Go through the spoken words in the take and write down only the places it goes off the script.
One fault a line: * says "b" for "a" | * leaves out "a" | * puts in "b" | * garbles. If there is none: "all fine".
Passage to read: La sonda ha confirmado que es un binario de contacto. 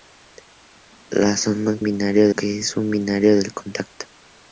* says "binario" for "confirmado"